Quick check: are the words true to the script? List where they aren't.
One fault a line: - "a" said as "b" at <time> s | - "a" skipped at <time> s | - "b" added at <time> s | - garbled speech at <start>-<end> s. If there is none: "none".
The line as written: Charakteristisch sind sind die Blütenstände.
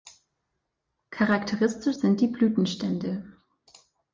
- "sind" skipped at 2.2 s